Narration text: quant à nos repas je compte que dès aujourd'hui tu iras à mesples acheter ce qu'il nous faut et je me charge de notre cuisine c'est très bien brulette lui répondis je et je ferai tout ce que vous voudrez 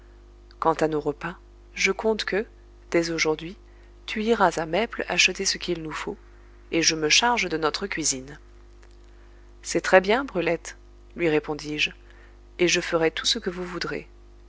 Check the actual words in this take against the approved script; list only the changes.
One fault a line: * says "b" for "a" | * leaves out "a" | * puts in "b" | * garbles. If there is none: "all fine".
all fine